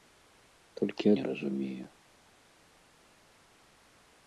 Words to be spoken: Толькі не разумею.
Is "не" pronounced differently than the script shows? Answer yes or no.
no